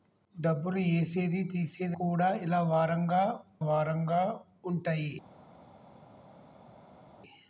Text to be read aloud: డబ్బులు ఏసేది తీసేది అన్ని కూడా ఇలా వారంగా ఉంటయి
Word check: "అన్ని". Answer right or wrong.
wrong